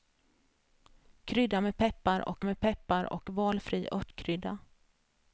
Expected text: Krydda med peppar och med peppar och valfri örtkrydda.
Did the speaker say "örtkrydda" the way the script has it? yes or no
yes